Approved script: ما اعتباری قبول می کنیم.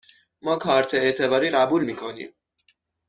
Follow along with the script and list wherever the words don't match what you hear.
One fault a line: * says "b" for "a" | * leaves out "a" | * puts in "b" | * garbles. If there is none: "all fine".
* puts in "کارت"